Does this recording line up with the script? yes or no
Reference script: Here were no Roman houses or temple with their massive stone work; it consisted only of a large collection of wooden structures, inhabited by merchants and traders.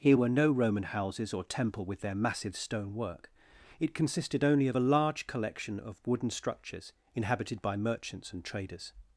yes